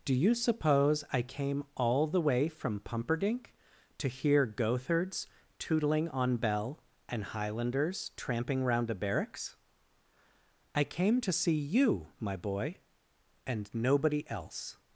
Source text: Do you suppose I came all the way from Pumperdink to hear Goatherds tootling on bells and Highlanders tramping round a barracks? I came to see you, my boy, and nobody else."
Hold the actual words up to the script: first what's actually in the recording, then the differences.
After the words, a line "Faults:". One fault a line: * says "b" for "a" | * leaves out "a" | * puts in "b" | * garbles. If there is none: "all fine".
Do you suppose I came all the way from Pumperdink to hear Goatherds tootling on bell and Highlanders tramping round a barracks? I came to see you, my boy, and nobody else."
Faults:
* says "bell" for "bells"